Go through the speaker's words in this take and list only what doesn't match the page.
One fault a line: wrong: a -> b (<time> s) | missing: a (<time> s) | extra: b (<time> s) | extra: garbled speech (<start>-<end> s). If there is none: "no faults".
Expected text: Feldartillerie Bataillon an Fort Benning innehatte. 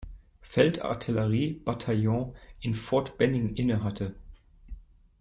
wrong: an -> in (2.6 s)